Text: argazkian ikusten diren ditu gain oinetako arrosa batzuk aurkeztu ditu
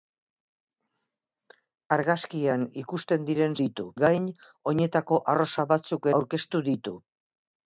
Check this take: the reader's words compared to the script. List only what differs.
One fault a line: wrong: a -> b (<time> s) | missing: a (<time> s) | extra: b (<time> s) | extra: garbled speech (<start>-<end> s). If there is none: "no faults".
no faults